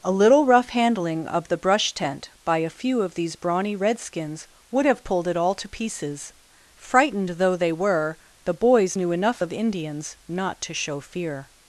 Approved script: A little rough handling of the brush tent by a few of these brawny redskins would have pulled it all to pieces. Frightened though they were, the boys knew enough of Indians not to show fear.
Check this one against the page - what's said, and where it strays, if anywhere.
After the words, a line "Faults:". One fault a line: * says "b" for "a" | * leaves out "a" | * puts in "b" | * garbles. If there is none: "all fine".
A little rough handling of the brush tent by a few of these brawny redskins would have pulled it all to pieces. Frightened though they were, the boys knew enough of Indians not to show fear.
Faults:
all fine